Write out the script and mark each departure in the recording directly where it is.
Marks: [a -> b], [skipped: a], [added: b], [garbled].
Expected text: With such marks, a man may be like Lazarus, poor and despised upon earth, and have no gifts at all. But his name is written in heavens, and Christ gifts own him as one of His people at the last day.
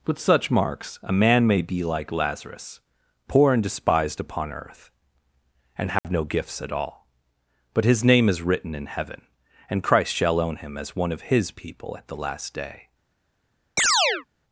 With such marks, a man may be like Lazarus, poor and despised upon earth, and have no gifts at all. But his name is written in [heavens, -> heaven] and Christ [gifts -> shall] own him as one of His people at the last day.